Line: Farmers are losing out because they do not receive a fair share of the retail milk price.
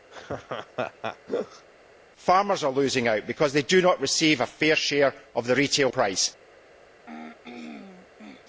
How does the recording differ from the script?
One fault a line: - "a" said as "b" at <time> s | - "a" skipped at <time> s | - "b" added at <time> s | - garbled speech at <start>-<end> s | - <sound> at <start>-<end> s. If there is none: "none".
- laugh at 0.1-1.7 s
- "milk" skipped at 5.9 s
- throat clearing at 7.1-8.5 s